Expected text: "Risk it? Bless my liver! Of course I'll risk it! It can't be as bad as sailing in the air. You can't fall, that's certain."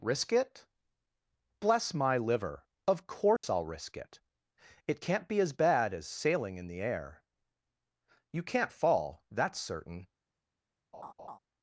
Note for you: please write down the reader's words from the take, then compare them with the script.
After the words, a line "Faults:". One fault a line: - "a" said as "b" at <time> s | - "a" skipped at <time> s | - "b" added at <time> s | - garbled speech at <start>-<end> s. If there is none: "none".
"Risk it? Bless my liver! Of course I'll risk it! It can't be as bad as sailing in the air. You can't fall, that's certain."
Faults:
none